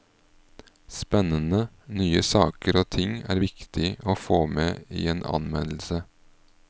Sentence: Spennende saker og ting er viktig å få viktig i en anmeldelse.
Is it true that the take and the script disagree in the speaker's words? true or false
true